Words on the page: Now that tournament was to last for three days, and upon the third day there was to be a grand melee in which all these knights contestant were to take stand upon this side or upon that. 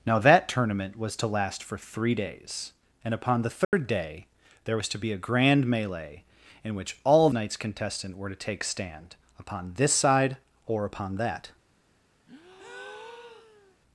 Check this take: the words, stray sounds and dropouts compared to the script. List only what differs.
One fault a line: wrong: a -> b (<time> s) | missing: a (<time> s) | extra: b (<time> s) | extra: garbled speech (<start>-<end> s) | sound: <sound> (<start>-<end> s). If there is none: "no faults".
sound: dropout (3.6-3.7 s)
missing: these (7.3 s)
sound: breath (12.3-13.8 s)